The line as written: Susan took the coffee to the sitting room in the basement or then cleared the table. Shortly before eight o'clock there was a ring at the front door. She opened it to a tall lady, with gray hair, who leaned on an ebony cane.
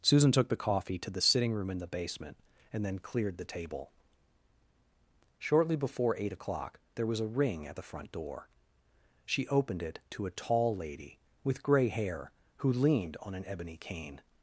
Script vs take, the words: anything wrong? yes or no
yes